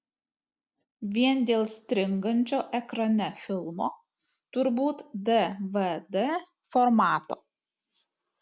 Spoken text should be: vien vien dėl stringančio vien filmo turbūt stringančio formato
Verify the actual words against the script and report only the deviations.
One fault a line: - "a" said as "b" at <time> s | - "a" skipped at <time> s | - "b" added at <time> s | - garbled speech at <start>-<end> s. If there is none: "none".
- "vien" skipped at 1.4 s
- "vien" said as "ekrane" at 2.8 s
- "stringančio" said as "dvd" at 5.3 s